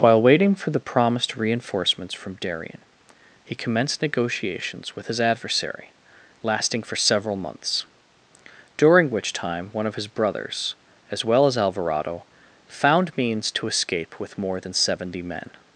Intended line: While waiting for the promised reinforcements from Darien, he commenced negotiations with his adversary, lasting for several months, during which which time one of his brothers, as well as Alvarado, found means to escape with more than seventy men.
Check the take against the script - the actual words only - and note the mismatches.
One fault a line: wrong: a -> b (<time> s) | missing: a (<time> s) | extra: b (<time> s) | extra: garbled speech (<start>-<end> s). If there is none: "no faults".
missing: which (9.3 s)